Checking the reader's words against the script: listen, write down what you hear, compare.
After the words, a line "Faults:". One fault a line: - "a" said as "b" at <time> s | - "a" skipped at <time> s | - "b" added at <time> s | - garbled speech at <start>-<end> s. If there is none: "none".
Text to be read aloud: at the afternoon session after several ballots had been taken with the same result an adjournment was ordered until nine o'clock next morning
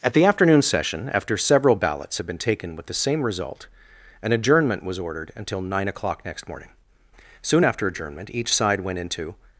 at the afternoon session after several ballots had been taken with the same result an adjournment was ordered until nine o'clock next morning soon after adjournment each side went into
Faults:
- "soon after adjournment each side went into" added at 7.4 s